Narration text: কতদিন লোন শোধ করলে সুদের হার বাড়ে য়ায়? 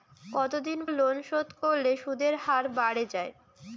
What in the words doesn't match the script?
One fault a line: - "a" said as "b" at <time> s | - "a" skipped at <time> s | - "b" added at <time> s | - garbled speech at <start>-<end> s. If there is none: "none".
none